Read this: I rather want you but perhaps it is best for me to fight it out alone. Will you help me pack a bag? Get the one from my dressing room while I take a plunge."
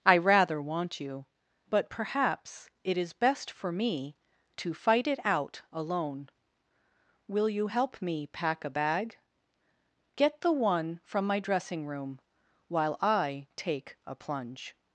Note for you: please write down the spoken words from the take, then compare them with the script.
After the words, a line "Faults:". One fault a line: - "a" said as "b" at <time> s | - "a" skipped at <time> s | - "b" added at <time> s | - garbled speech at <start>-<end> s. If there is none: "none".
I rather want you but perhaps it is best for me to fight it out alone. Will you help me pack a bag? Get the one from my dressing room while I take a plunge."
Faults:
none